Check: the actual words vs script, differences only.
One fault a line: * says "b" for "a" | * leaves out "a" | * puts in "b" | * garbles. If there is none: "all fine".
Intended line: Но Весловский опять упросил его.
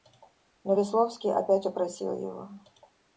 all fine